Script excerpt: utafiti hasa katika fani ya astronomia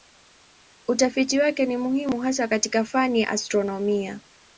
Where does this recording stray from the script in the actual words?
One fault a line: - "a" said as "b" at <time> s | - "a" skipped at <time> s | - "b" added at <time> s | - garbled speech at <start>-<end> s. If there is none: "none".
- "wake ni muhimu" added at 1.4 s